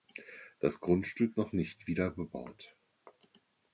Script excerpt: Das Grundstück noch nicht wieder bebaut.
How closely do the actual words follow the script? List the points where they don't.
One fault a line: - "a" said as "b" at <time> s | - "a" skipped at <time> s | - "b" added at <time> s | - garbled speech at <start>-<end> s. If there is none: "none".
none